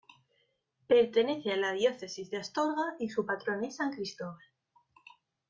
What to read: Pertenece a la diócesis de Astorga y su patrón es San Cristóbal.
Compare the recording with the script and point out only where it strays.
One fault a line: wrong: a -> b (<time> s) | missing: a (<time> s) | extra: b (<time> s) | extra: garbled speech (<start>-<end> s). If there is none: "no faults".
no faults